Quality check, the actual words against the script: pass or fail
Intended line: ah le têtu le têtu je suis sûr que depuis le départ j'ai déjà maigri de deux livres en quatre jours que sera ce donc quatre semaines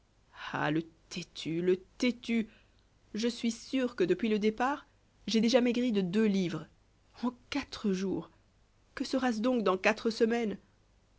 fail